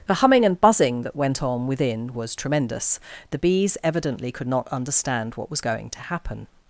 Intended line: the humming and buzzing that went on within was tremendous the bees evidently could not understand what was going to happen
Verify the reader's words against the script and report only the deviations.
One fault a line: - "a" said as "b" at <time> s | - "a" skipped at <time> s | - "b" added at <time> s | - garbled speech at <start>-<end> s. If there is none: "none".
none